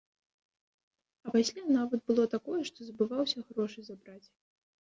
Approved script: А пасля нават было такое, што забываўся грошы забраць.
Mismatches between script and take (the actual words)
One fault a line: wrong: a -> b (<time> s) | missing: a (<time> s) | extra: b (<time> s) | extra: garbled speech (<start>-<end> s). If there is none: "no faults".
no faults